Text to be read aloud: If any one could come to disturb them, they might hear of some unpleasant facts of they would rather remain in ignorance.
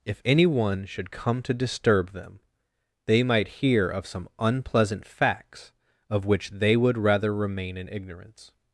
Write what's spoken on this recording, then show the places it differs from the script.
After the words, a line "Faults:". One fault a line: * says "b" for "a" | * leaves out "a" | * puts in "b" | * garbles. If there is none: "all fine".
If any one should come to disturb them, they might hear of some unpleasant facts of which they would rather remain in ignorance.
Faults:
* says "should" for "could"
* puts in "which"